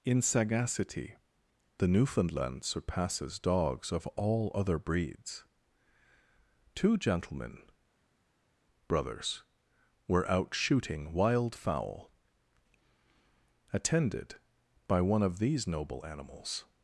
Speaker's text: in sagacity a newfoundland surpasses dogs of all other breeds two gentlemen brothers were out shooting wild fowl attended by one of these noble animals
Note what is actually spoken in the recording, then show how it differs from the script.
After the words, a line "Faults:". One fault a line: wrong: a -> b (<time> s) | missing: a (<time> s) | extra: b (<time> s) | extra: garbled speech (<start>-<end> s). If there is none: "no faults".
in sagacity the newfoundland surpasses dogs of all other breeds two gentlemen brothers were out shooting wild fowl attended by one of these noble animals
Faults:
wrong: a -> the (1.8 s)